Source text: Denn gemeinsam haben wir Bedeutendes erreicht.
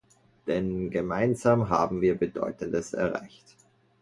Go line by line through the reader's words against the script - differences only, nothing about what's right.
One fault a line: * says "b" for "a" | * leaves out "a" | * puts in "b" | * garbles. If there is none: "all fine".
all fine